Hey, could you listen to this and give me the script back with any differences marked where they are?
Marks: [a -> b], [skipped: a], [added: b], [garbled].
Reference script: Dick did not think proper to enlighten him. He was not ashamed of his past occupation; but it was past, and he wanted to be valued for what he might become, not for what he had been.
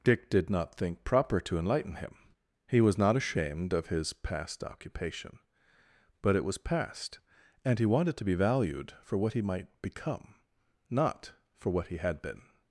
Dick did not think proper to enlighten him. He was not ashamed of his past occupation; but it was past, and he wanted to be valued for what he might become, not for what he had been.